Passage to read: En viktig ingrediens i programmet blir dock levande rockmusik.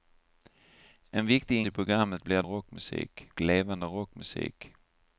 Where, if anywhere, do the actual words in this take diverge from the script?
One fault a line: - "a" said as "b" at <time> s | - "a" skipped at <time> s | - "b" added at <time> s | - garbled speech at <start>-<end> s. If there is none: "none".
- "ingrediens" skipped at 1.6 s
- "dock" said as "rockmusik" at 2.4 s